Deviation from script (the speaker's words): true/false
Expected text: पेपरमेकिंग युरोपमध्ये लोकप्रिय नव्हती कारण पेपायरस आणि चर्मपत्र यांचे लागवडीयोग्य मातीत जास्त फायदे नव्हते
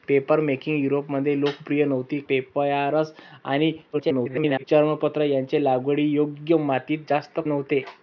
true